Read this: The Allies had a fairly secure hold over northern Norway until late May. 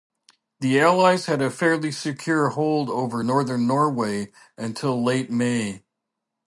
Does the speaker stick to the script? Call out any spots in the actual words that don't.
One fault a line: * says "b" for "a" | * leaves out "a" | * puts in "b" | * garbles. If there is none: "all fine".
all fine